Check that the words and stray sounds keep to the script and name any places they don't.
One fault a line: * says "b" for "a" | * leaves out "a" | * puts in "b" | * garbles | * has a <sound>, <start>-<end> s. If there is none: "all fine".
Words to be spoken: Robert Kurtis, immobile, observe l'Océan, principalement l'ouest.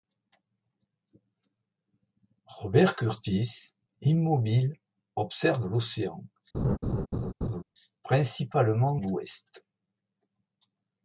* has a laugh, 6.5-7.6 s